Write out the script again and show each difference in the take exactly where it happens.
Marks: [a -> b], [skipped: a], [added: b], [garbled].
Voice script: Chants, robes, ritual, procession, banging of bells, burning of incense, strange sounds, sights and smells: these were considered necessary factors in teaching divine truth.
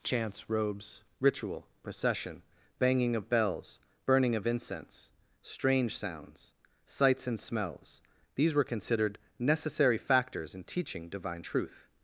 Chants, robes, ritual, procession, banging of bells, burning of incense, strange sounds, sights and smells: these were considered necessary factors in teaching divine truth.